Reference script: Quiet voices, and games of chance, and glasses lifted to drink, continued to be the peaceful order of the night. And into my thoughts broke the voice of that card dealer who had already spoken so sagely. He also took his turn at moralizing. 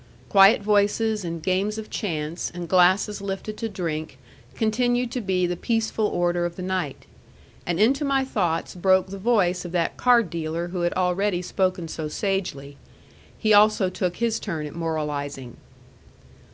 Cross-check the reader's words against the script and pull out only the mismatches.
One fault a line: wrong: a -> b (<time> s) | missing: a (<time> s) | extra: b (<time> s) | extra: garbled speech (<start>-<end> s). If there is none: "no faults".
no faults